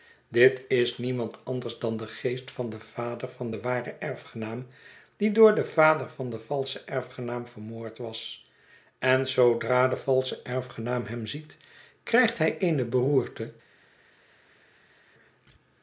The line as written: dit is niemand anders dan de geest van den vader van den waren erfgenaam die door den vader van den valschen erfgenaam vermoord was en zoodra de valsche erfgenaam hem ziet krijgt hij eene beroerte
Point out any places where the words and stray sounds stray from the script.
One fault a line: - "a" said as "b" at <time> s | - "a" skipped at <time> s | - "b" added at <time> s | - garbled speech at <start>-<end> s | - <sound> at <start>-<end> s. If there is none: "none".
none